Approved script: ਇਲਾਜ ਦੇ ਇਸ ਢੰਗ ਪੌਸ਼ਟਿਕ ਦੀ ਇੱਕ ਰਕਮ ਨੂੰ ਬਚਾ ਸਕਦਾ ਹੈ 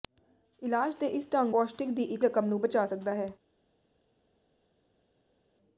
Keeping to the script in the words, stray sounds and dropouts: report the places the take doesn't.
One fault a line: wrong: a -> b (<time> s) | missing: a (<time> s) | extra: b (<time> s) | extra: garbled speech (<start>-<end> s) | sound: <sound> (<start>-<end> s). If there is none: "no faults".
no faults